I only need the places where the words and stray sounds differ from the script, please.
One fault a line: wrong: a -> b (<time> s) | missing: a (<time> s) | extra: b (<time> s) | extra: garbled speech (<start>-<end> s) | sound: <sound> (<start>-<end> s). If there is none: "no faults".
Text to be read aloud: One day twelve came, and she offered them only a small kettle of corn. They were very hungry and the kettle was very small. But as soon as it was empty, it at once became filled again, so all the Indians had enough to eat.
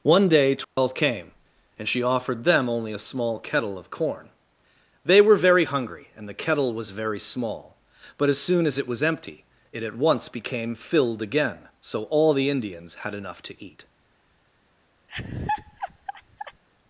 sound: dropout (0.6-0.8 s)
sound: laugh (15.1-16.6 s)